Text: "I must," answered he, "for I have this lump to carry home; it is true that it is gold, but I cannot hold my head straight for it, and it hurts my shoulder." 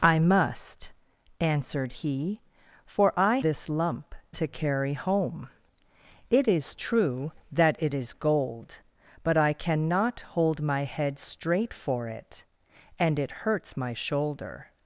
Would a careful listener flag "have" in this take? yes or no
yes